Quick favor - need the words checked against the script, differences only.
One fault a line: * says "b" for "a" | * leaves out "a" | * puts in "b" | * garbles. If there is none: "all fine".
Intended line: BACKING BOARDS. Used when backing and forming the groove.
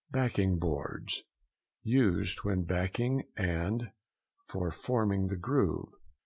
* puts in "for"